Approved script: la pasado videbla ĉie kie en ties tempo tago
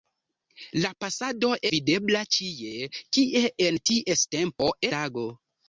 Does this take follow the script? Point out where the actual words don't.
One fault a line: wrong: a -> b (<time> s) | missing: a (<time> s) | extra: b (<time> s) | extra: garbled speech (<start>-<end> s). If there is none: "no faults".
no faults